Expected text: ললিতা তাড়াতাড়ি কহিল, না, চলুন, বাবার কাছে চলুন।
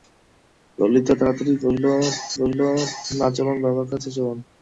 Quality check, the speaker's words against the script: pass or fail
fail